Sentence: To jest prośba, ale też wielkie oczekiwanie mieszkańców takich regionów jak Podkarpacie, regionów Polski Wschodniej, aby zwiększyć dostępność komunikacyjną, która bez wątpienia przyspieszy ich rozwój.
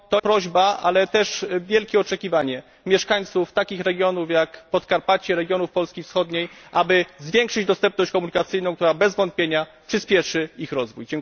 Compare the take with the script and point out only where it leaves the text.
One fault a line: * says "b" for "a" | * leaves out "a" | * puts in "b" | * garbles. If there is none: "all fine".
* leaves out "jest"